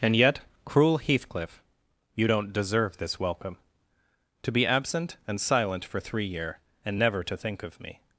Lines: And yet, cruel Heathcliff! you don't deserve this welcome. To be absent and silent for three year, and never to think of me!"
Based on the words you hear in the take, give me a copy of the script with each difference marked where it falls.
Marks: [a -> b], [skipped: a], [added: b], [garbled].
And yet, cruel Heathcliff! you don't deserve this welcome. To be absent and silent for three year, and never to think of me!"